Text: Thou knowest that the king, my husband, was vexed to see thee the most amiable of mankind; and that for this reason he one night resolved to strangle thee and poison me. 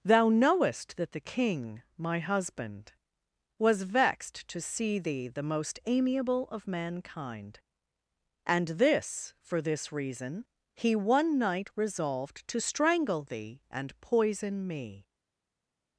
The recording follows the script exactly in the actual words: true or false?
false